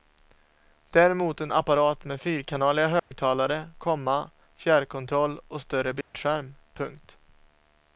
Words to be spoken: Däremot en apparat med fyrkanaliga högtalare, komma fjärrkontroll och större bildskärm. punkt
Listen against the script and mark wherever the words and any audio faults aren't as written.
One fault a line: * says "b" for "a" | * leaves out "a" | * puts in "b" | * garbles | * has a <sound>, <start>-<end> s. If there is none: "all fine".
* has a dropout, 3.0-3.1 s
* has a dropout, 6.0-6.1 s